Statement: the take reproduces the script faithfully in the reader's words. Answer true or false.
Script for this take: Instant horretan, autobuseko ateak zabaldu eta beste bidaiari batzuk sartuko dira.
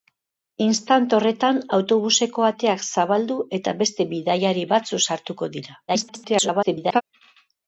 false